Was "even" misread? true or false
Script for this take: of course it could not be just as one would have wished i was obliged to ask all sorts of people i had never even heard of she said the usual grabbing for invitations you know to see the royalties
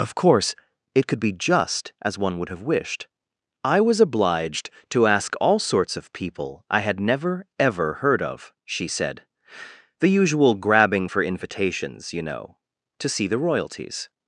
true